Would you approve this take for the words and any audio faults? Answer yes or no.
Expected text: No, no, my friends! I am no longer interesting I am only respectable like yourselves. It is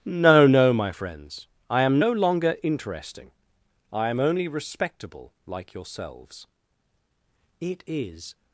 yes